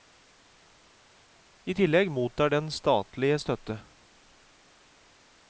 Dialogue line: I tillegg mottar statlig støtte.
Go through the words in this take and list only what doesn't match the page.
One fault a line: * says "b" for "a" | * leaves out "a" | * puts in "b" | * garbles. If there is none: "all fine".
* puts in "den"